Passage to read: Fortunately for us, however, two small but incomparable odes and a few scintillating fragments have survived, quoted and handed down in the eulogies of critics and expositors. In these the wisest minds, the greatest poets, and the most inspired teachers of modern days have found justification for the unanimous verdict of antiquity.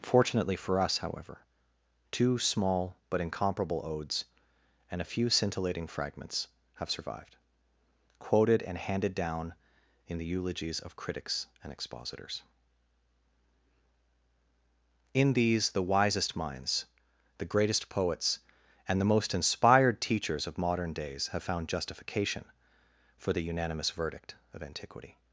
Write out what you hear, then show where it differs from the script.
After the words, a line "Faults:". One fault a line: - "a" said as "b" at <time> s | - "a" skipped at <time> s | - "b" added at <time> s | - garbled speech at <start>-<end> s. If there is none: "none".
Fortunately for us, however, two small but incomparable odes and a few scintillating fragments have survived, quoted and handed down in the eulogies of critics and expositors. In these the wisest minds, the greatest poets, and the most inspired teachers of modern days have found justification for the unanimous verdict of antiquity.
Faults:
none